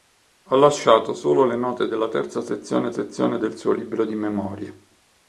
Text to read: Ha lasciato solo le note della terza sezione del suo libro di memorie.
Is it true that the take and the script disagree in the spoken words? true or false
true